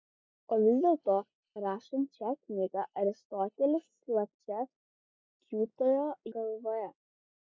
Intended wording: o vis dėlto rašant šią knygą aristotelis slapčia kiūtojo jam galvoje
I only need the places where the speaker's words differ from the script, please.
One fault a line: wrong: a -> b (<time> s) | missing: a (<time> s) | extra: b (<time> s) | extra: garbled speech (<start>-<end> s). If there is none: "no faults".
missing: jam (6.1 s)